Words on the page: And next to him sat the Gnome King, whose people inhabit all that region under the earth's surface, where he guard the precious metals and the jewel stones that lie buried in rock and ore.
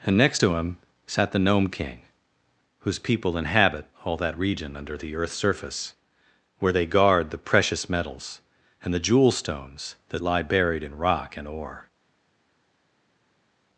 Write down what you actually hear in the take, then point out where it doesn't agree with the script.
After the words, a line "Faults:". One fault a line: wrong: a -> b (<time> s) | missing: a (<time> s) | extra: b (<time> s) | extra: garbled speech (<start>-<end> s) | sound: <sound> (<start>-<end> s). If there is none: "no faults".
And next to him sat the Gnome King, whose people inhabit all that region under the earth's surface, where they guard the precious metals and the jewel stones that lie buried in rock and ore.
Faults:
wrong: he -> they (6.7 s)